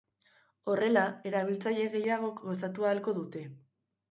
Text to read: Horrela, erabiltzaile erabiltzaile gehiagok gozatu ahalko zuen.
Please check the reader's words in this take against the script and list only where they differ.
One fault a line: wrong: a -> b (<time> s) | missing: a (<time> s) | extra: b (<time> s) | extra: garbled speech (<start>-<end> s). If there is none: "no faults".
missing: erabiltzaile (1.9 s)
wrong: zuen -> dute (3.2 s)